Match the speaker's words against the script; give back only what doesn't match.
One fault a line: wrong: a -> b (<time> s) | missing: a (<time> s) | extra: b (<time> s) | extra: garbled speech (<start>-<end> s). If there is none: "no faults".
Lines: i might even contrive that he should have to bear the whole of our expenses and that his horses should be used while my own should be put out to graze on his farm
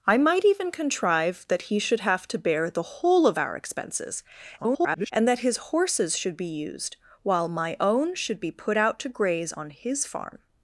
extra: garbled speech (4.6-5.1 s)